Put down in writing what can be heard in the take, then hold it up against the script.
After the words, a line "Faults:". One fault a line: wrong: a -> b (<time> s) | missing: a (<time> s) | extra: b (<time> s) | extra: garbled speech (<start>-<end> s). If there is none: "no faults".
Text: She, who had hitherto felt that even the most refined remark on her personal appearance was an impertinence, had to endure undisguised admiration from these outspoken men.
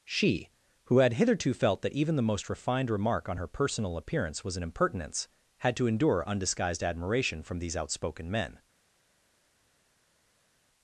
She, who had hitherto felt that even the most refined remark on her personal appearance was an impertinence, had to endure undisguised admiration from these outspoken men.
Faults:
no faults